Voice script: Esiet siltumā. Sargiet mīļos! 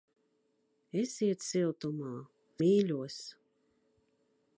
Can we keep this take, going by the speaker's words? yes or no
no